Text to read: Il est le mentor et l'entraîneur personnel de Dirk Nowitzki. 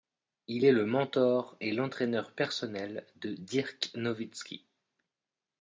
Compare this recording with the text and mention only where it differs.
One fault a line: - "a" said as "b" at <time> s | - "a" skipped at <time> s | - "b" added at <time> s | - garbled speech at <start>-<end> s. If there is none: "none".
none